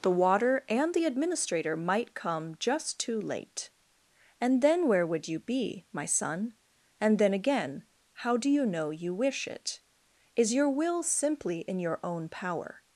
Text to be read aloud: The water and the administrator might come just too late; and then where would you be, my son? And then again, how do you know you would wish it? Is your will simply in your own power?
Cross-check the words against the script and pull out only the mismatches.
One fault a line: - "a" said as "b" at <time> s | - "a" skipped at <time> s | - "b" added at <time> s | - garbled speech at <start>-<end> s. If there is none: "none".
- "would" skipped at 9.1 s